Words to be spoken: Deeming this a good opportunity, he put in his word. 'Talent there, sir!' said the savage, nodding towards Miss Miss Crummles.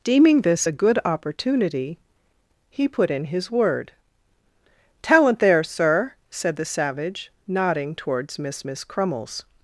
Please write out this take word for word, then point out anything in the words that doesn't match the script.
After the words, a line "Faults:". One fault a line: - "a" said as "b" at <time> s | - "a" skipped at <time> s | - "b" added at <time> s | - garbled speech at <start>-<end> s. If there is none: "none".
Deeming this a good opportunity, he put in his word. 'Talent there, sir!' said the savage, nodding towards Miss Miss Crummles.
Faults:
none